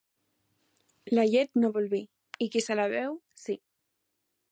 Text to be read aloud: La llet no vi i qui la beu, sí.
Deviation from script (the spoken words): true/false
true